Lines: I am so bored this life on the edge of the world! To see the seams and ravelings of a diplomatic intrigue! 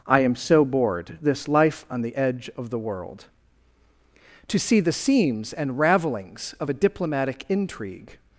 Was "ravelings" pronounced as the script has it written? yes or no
yes